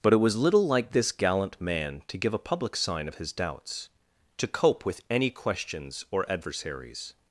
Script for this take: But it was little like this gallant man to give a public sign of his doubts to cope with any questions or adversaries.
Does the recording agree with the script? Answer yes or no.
yes